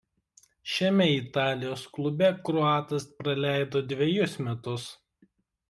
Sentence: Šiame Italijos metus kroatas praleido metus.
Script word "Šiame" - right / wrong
right